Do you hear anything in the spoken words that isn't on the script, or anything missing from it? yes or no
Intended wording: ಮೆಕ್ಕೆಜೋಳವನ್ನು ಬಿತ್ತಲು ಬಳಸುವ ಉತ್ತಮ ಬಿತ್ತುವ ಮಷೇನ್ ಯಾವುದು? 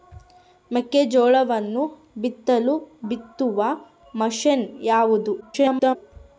yes